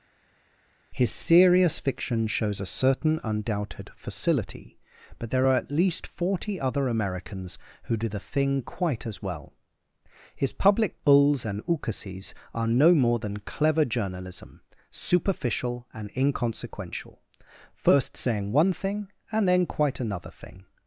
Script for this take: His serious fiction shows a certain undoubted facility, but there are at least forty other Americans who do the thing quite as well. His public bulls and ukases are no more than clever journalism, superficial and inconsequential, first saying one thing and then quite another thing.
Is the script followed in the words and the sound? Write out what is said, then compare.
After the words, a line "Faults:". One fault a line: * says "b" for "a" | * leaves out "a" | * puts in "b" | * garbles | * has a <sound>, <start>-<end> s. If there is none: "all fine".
His serious fiction shows a certain undoubted facility, but there are at least forty other Americans who do the thing quite as well. His public bulls and ukases are no more than clever journalism, superficial and inconsequential, first saying one thing and then quite another thing.
Faults:
all fine